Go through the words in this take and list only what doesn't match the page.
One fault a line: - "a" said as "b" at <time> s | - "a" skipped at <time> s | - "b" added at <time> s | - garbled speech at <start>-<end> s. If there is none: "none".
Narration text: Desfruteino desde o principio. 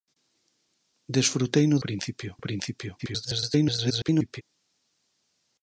- "desde" said as "principio" at 1.9 s
- garbled speech at 3.0-4.4 s